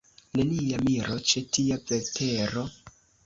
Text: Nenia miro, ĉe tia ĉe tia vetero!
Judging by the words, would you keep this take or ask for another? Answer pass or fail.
fail